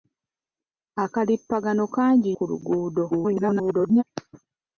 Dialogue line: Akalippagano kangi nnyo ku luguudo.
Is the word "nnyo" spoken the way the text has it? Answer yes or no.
no